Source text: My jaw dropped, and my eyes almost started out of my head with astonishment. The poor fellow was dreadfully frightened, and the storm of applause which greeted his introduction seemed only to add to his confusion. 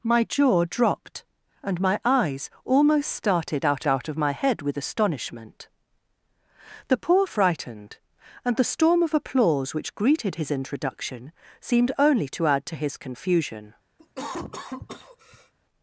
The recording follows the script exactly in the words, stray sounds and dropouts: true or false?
false